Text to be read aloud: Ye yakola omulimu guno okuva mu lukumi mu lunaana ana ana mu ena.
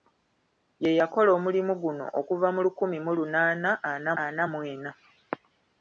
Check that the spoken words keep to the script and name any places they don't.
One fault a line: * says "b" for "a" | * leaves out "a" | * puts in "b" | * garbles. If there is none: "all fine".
all fine